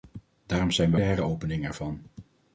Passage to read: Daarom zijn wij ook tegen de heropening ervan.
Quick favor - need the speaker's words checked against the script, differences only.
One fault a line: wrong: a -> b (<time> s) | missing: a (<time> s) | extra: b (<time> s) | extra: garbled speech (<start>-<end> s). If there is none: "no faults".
missing: ook tegen (1.0 s)